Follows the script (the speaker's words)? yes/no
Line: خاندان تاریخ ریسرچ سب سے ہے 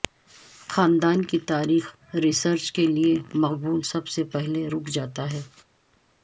no